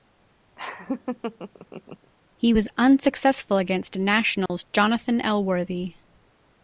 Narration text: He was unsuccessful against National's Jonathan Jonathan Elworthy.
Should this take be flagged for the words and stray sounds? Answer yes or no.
yes